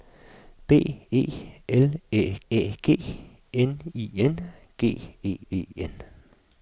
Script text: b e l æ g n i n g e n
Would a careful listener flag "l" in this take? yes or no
no